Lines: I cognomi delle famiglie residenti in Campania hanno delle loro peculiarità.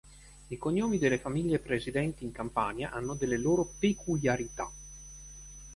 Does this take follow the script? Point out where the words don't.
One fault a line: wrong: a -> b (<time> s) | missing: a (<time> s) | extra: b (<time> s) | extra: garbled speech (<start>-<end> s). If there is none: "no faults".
no faults